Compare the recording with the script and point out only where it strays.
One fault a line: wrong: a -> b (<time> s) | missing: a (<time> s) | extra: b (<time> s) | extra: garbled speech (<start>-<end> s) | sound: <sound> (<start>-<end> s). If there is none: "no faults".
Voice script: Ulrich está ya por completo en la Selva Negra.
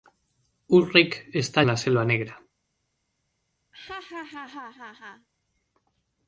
missing: ya por completo (1.6 s)
sound: laugh (3.7-5.3 s)